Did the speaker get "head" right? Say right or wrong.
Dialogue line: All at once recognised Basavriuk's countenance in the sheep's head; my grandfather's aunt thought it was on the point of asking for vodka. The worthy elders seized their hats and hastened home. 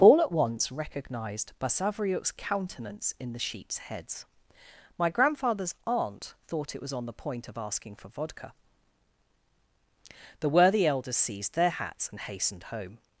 wrong